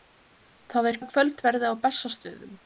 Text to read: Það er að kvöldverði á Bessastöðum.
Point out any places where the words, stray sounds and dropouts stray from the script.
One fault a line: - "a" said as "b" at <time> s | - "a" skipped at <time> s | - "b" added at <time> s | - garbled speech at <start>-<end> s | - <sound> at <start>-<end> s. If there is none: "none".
none